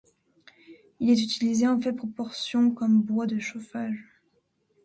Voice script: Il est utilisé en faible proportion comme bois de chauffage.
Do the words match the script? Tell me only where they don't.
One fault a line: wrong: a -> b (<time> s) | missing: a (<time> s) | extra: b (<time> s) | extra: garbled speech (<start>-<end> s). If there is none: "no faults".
no faults